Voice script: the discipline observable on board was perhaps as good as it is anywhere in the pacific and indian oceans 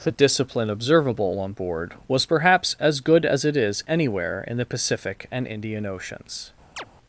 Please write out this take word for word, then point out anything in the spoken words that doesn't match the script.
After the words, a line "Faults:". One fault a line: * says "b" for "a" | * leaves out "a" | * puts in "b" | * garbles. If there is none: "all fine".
the discipline observable on board was perhaps as good as it is anywhere in the pacific and indian oceans
Faults:
all fine